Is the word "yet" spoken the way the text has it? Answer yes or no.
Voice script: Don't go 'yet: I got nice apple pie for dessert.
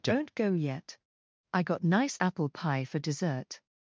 yes